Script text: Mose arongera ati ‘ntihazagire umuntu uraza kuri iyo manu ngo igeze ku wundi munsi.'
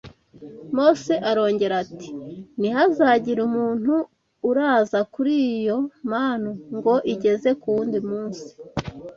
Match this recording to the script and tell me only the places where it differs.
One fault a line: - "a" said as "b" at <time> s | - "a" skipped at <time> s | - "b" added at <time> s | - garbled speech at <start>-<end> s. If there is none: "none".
none